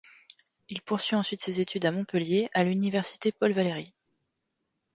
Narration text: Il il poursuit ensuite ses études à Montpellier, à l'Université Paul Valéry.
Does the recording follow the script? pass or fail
fail